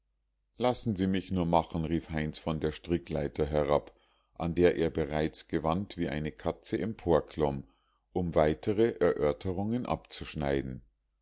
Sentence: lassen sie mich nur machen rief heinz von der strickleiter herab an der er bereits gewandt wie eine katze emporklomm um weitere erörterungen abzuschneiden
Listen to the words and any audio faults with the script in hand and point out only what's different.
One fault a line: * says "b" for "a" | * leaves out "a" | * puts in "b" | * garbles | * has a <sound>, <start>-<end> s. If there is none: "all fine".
all fine